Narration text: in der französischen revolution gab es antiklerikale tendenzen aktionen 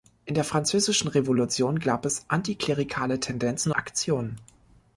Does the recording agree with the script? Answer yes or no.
yes